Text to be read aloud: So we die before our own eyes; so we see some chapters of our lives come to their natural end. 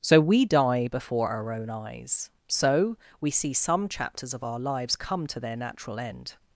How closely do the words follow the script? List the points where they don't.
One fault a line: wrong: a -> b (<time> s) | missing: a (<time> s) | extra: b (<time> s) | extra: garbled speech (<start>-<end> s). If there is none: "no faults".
no faults